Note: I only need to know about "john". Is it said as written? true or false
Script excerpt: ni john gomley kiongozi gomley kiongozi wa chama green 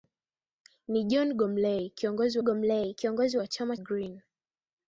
true